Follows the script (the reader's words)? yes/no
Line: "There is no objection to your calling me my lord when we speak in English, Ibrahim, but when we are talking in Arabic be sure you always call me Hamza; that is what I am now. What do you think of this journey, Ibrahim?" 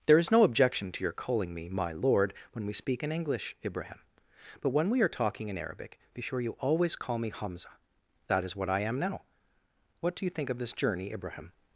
yes